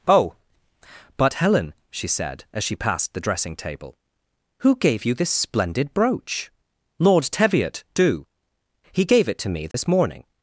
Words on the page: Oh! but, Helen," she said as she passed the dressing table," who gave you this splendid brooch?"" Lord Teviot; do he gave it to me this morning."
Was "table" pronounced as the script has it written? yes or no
yes